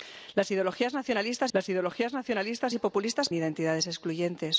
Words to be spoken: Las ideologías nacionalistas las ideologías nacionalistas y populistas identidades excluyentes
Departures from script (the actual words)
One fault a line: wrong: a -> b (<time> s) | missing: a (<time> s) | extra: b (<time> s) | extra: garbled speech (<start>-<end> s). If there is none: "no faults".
no faults